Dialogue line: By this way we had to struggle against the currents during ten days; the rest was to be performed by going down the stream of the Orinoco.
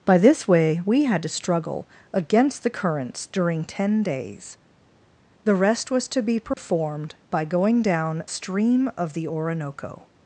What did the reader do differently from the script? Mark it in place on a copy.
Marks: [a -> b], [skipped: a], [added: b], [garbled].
By this way we had to struggle against the currents during ten days; the rest was to be performed by going down [skipped: the] stream of the Orinoco.